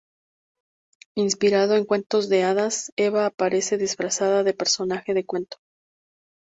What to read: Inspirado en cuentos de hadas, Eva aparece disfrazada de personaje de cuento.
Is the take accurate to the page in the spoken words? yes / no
yes